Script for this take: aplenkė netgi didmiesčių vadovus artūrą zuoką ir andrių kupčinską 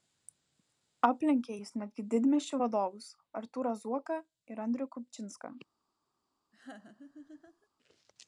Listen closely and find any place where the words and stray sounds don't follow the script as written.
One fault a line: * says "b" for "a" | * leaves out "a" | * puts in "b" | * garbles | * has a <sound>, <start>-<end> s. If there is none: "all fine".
* puts in "jis"
* has a laugh, 6.5-7.7 s